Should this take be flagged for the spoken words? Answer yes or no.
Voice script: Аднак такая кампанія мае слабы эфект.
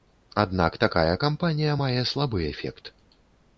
no